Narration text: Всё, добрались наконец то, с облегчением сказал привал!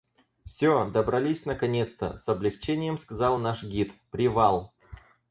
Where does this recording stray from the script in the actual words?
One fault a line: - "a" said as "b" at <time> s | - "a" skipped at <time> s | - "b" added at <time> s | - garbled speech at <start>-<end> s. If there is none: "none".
- "наш гид" added at 3.4 s